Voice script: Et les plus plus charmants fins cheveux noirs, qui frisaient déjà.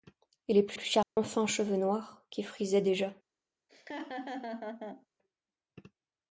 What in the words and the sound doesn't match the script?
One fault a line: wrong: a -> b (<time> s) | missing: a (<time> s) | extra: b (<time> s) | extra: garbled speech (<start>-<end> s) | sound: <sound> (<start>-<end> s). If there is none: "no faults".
sound: dropout (1.0-1.2 s)
sound: laugh (3.7-5.1 s)